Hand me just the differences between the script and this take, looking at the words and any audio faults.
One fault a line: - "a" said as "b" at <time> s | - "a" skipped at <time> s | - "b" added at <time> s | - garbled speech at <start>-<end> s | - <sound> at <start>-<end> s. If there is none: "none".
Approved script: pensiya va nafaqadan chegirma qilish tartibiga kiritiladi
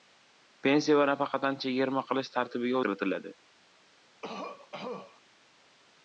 - cough at 4.2-5.2 s